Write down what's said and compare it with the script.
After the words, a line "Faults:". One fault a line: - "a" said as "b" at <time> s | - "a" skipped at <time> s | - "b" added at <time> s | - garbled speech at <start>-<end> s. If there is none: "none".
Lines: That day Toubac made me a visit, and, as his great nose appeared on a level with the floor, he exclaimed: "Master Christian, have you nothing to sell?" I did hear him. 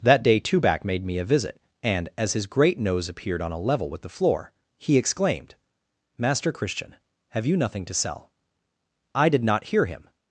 That day Toubac made me a visit, and, as his great nose appeared on a level with the floor, he exclaimed: "Master Christian, have you nothing to sell?" I did not hear him.
Faults:
- "not" added at 9.4 s